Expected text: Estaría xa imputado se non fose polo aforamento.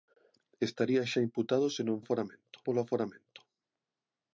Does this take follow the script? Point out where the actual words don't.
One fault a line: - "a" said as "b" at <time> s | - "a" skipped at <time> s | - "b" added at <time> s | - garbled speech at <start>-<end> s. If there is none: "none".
- "fose" said as "aforamento" at 2.0 s